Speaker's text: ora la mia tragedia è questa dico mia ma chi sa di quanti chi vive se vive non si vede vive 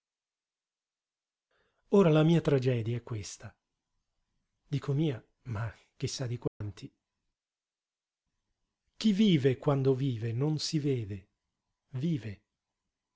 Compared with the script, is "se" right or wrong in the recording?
wrong